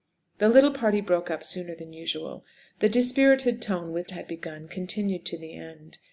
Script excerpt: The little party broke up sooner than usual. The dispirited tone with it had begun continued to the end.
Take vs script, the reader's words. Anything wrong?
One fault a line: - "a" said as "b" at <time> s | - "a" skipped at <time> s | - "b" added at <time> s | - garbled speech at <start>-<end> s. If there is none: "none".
none